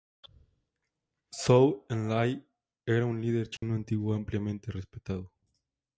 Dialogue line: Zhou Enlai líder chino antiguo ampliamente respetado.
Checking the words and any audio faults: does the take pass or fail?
fail